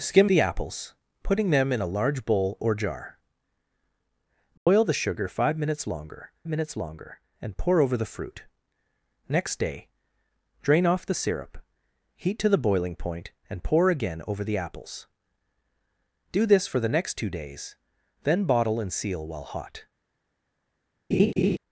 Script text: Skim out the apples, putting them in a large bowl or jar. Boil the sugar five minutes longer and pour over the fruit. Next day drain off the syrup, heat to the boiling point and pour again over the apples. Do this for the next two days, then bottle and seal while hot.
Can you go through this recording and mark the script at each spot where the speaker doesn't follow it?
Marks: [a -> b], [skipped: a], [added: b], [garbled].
Skim [skipped: out] the apples, putting them in a large bowl or jar. Boil the sugar five minutes longer [added: minutes longer] and pour over the fruit. Next day drain off the syrup, heat to the boiling point and pour again over the apples. Do this for the next two days, then bottle and seal while hot.